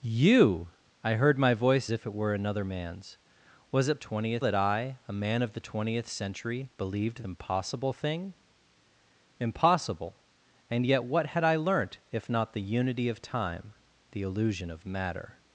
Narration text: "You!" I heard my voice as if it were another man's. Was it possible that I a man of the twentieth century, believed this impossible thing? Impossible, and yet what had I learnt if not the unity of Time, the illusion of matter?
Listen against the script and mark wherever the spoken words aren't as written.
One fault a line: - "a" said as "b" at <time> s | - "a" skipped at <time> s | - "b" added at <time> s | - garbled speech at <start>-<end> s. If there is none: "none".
- "as" skipped at 1.9 s
- "possible" said as "twentieth" at 4.0 s
- "this" skipped at 7.2 s